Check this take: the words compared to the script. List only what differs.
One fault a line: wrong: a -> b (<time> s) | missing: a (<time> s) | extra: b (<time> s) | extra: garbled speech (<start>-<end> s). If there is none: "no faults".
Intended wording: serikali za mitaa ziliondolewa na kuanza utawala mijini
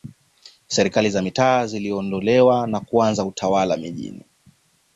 no faults